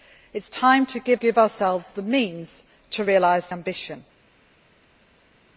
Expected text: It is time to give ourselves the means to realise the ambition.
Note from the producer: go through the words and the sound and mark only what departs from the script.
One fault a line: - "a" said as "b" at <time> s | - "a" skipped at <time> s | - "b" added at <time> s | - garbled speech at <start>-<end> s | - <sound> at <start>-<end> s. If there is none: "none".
- "give" added at 1.1 s
- "the" skipped at 3.5 s